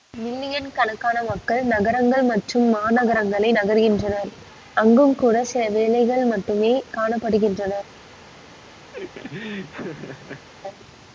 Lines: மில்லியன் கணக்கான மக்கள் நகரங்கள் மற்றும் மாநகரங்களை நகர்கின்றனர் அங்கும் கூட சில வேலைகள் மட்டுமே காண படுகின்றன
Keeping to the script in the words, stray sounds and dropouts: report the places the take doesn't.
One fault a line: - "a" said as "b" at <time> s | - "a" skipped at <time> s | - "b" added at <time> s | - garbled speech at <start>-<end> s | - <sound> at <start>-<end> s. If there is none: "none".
- laugh at 8.9-10.5 s